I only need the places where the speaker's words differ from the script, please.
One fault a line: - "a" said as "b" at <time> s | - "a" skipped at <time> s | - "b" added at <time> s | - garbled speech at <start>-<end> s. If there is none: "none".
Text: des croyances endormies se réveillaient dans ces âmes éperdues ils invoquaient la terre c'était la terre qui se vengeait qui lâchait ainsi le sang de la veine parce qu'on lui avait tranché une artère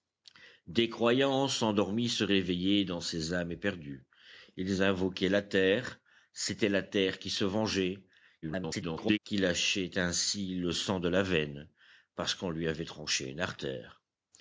- garbled speech at 8.4-9.2 s